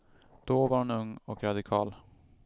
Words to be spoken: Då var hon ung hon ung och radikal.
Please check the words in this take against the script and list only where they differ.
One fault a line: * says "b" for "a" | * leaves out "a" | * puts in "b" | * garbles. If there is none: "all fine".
* leaves out "hon ung"